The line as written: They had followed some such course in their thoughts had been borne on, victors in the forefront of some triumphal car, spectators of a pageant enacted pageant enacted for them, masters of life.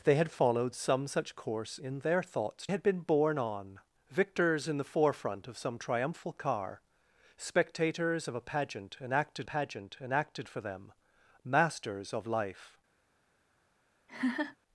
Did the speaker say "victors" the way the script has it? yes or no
yes